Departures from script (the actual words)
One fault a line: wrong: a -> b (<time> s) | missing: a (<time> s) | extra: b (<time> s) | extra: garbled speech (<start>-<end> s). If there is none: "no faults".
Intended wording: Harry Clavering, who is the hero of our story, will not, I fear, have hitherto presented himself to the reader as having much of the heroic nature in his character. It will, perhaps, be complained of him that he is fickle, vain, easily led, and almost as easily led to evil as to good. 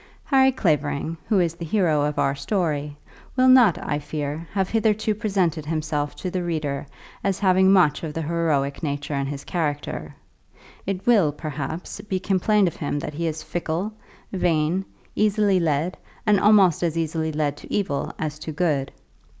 no faults